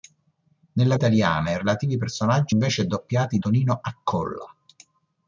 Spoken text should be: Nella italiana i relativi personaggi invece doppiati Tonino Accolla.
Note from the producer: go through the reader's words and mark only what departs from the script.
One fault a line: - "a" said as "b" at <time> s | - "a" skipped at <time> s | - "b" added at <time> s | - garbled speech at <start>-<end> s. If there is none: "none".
none